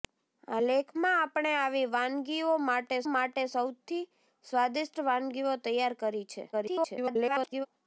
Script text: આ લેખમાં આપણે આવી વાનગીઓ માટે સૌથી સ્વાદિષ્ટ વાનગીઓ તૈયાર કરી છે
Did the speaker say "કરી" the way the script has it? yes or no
yes